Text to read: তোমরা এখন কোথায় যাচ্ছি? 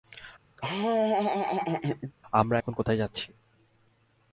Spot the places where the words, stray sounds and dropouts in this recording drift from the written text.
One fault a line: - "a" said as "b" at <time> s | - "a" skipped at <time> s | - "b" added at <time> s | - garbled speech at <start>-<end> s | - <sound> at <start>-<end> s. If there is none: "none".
- laugh at 0.6-2.1 s
- "তোমরা" said as "আমরা" at 2.3 s